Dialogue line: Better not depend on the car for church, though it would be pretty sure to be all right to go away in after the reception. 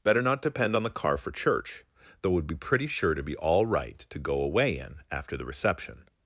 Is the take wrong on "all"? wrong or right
right